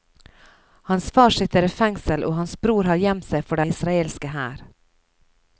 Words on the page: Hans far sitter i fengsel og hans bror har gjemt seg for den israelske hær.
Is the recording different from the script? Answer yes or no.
yes